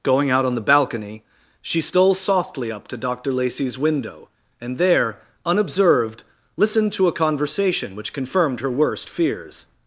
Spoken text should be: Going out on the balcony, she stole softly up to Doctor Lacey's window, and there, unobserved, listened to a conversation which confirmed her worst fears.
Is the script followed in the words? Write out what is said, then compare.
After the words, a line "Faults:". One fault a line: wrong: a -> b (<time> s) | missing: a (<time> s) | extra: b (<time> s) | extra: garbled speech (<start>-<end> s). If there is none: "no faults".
Going out on the balcony, she stole softly up to Doctor Lacey's window, and there, unobserved, listened to a conversation which confirmed her worst fears.
Faults:
no faults